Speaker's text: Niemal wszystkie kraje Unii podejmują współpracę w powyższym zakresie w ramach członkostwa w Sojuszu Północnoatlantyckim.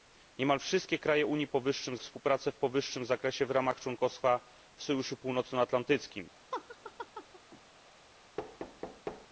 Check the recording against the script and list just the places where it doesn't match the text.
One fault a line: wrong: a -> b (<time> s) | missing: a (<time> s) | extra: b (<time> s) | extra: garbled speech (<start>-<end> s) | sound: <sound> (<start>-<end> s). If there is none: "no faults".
wrong: podejmują -> powyższym (1.5 s)
sound: laugh (6.5-7.6 s)
sound: thud (8.4-9.3 s)